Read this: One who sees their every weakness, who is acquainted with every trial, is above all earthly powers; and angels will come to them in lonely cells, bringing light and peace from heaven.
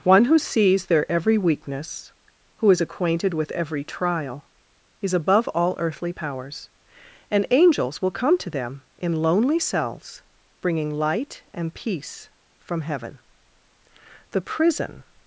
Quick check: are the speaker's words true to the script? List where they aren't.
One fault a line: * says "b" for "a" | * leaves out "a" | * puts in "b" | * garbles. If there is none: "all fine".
* puts in "The prison"